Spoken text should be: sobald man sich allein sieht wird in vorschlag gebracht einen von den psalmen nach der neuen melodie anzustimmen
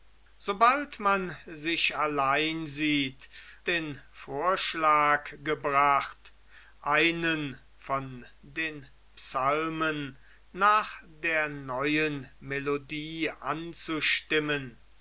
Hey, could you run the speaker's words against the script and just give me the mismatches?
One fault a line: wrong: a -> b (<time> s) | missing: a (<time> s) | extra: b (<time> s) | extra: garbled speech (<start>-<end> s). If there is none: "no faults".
missing: wird (3.3 s)